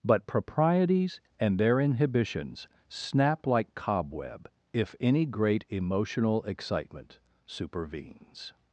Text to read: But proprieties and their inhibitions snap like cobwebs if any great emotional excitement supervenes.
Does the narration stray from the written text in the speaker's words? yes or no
yes